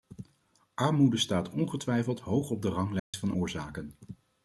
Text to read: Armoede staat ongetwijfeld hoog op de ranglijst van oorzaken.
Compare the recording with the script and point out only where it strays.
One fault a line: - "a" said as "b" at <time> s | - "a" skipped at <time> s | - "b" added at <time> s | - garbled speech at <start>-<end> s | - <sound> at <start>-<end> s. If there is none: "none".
- dropout at 3.0-3.1 s